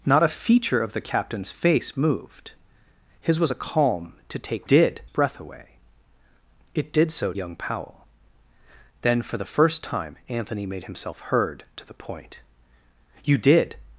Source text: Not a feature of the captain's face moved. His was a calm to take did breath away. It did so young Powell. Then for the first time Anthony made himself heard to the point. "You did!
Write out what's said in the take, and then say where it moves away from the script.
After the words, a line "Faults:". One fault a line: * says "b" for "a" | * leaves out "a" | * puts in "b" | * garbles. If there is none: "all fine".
Not a feature of the captain's face moved. His was a calm to take did breath away. It did so young Powell. Then for the first time Anthony made himself heard to the point. "You did!
Faults:
all fine